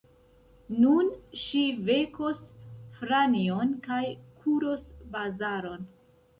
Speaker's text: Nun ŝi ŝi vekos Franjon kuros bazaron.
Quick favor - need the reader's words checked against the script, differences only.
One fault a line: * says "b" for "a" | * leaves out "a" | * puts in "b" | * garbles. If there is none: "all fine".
* leaves out "ŝi"
* puts in "kaj"